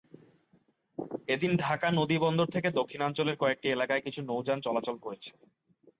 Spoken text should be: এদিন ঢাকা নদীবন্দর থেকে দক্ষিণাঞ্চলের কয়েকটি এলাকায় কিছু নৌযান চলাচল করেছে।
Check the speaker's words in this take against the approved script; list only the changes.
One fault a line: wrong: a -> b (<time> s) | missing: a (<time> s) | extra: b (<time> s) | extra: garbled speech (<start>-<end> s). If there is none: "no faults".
no faults